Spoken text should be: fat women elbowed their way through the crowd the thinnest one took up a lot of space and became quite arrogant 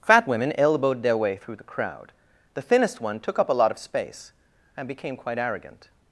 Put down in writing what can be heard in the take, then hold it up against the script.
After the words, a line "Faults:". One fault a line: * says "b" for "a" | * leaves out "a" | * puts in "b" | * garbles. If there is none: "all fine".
fat women elbowed their way through the crowd the thinnest one took up a lot of space and became quite arrogant
Faults:
all fine